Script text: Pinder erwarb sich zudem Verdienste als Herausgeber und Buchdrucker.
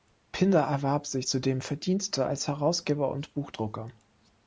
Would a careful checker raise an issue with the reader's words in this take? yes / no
no